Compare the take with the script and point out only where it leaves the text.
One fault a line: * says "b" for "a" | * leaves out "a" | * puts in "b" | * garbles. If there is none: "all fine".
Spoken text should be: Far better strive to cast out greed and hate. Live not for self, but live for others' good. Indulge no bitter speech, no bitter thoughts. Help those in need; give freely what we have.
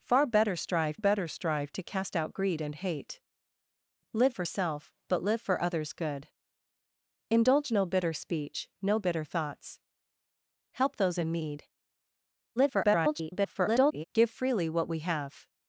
* puts in "better strive"
* leaves out "not"
* garbles